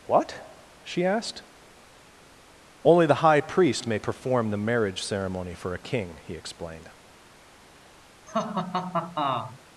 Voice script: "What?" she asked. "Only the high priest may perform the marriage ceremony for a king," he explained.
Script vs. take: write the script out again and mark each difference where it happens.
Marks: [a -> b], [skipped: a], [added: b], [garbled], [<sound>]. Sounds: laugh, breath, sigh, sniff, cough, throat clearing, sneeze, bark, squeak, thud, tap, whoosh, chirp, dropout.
"What?" she asked. "Only the high priest may perform the marriage ceremony for a king," he explained. [laugh]